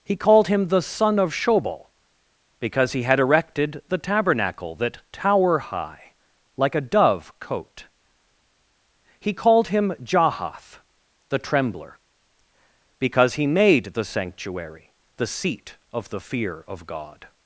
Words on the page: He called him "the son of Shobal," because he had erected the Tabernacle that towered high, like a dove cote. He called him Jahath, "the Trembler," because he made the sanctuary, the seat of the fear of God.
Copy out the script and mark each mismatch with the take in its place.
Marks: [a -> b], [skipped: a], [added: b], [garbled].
He called him "the son of Shobal," because he had erected the Tabernacle that [towered -> tower] high, like a dove cote. He called him Jahath, "the Trembler," because he made the sanctuary, the seat of the fear of God.